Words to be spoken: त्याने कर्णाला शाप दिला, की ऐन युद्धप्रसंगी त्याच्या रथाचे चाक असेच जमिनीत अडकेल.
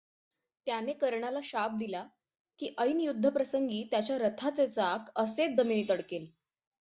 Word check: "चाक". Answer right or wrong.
right